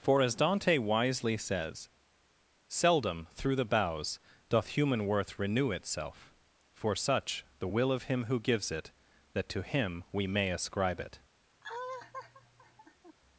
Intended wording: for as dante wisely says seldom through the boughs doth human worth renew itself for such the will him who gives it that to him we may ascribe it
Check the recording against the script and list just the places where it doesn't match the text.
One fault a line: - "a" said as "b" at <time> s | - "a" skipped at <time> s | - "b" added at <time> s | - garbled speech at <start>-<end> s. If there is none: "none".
- "of" added at 7.9 s